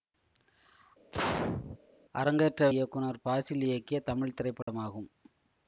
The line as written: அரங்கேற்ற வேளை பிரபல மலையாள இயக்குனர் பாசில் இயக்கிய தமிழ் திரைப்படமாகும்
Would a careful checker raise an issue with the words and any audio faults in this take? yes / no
yes